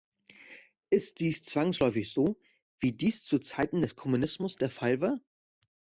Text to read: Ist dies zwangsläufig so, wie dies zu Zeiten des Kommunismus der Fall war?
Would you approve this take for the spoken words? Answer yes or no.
yes